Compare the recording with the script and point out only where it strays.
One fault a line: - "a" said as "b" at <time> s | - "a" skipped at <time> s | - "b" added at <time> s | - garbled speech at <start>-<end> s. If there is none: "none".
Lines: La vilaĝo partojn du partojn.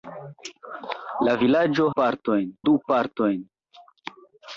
none